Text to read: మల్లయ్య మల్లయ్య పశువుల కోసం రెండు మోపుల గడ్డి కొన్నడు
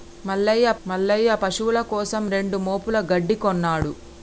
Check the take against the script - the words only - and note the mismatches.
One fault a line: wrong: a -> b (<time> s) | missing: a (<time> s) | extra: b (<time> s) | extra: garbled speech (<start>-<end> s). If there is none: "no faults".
no faults